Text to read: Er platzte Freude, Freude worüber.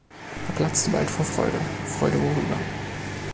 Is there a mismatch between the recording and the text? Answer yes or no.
yes